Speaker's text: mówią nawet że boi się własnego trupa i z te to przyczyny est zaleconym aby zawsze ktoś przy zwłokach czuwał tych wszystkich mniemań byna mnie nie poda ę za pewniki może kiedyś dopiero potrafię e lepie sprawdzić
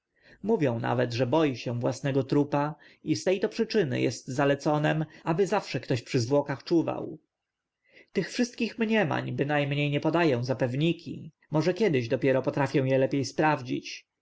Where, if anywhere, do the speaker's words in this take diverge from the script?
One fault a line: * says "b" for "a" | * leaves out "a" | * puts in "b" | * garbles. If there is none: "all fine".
all fine